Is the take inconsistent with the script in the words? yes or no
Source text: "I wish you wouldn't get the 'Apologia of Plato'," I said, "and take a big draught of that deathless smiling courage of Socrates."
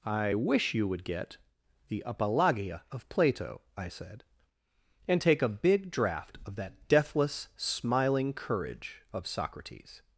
yes